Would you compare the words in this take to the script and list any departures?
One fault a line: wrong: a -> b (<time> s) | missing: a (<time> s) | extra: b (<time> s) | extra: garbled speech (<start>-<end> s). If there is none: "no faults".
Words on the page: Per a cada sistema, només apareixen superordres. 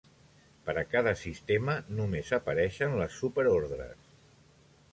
extra: les (3.0 s)